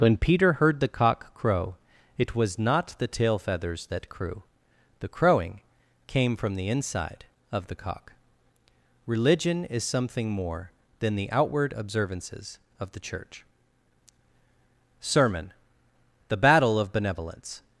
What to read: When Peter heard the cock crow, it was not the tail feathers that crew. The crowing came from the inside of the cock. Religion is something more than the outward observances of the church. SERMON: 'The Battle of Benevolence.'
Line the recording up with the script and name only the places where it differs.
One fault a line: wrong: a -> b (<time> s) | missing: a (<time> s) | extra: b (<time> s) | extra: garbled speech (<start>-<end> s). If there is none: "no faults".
no faults